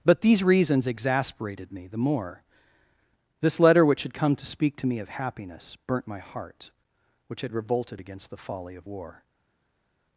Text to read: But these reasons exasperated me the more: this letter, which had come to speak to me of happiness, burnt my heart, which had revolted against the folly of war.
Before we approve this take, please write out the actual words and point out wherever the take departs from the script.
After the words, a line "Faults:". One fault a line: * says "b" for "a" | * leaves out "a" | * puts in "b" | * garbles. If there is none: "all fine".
But these reasons exasperated me the more: this letter, which had come to speak to me of happiness, burnt my heart, which had revolted against the folly of war.
Faults:
all fine